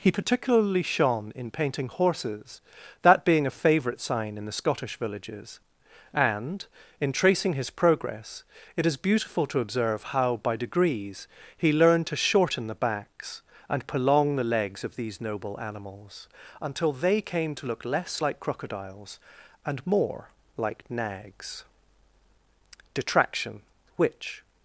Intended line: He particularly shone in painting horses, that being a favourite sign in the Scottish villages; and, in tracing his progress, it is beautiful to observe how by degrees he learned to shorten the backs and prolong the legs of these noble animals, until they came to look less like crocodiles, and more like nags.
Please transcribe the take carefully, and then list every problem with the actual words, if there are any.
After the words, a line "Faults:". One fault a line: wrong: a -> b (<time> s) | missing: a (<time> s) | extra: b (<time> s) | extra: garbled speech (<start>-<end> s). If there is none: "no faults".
He particularly shone in painting horses, that being a favourite sign in the Scottish villages; and, in tracing his progress, it is beautiful to observe how by degrees he learned to shorten the backs and prolong the legs of these noble animals, until they came to look less like crocodiles, and more like nags. Detraction, which
Faults:
extra: Detraction which (22.9 s)